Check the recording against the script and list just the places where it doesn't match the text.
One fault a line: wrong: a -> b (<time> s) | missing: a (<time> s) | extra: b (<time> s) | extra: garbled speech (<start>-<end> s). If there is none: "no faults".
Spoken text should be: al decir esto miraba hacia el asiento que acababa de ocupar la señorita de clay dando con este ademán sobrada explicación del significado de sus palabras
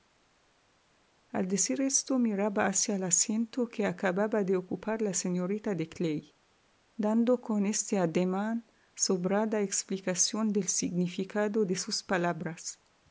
no faults